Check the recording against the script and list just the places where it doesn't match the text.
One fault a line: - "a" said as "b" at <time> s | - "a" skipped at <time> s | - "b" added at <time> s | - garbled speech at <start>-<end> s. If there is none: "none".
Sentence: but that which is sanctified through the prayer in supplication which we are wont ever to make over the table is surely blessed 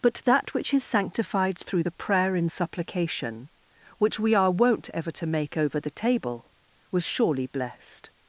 - "is" said as "was" at 6.9 s